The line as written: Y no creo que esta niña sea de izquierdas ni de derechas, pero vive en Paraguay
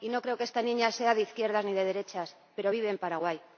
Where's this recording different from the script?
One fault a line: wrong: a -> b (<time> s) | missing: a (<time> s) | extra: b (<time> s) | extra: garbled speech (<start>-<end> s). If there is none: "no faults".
no faults